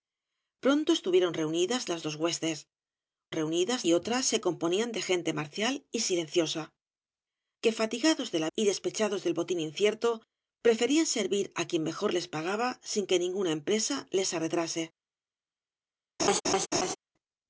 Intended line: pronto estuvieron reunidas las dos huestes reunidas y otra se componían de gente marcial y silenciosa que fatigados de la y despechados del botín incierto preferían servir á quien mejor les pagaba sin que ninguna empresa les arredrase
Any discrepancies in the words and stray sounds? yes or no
yes